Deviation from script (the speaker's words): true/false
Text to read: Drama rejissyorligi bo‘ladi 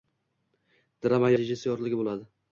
false